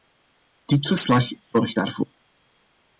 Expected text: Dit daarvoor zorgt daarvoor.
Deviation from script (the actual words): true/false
true